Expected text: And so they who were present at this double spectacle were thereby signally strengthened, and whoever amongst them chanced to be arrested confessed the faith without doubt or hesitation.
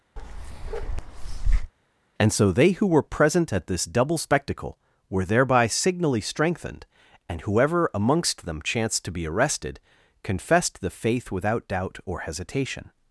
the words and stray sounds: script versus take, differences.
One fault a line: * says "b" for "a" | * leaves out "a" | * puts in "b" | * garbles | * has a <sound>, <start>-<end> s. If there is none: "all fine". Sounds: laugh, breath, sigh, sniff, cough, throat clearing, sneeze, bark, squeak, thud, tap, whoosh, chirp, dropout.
* has a bark, 0.2-1.7 s